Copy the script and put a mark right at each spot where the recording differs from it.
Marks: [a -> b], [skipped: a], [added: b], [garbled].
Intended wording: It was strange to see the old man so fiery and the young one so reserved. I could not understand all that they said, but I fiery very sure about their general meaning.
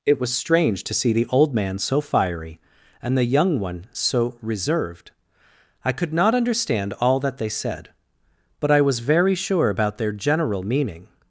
It was strange to see the old man so fiery and the young one so reserved. I could not understand all that they said, but I [fiery -> was] very sure about their general meaning.